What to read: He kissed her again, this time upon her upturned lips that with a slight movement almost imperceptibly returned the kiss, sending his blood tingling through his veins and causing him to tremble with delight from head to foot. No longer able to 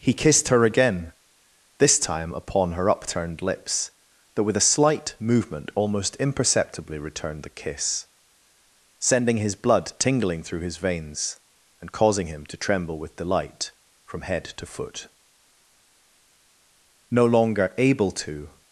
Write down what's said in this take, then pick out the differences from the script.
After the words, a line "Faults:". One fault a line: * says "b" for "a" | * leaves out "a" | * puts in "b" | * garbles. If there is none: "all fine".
He kissed her again, this time upon her upturned lips that with a slight movement almost imperceptibly returned the kiss, sending his blood tingling through his veins and causing him to tremble with delight from head to foot. No longer able to
Faults:
all fine